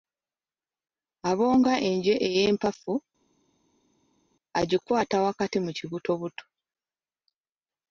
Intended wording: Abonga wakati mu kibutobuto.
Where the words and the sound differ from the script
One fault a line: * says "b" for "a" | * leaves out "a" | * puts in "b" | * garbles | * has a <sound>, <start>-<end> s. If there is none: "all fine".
* puts in "enje ey'empafu agikwata"